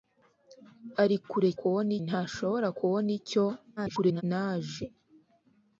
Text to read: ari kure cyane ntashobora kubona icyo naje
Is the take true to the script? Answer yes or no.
no